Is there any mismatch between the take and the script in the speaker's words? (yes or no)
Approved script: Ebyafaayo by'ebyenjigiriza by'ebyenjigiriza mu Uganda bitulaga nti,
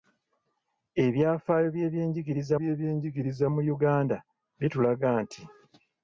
no